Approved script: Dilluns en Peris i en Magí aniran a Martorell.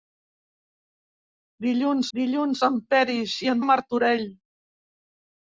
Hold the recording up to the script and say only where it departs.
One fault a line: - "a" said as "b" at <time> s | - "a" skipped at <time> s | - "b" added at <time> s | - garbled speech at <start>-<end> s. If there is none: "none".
- "dilluns" added at 2.2 s
- "Magí aniran" skipped at 3.6 s